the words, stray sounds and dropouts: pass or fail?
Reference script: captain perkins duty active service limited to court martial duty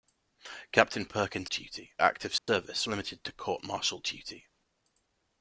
fail